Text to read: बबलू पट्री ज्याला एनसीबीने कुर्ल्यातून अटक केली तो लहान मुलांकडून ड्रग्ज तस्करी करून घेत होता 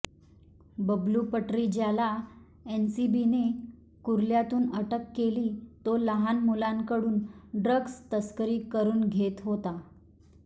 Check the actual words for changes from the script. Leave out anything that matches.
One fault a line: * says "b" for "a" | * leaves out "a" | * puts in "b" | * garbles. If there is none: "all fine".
all fine